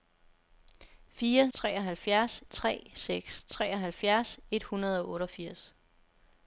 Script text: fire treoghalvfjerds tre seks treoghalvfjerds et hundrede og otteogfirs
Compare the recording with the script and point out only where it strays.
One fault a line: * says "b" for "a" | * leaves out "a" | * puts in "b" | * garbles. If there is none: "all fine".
all fine